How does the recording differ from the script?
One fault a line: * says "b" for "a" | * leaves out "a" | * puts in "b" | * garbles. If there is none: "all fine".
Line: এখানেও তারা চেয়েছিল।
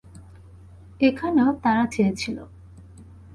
all fine